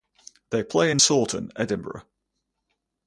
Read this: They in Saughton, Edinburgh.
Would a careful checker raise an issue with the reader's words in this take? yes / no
yes